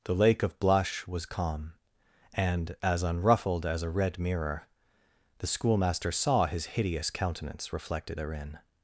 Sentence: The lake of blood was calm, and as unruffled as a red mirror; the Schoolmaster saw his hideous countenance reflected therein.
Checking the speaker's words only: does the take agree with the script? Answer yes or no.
no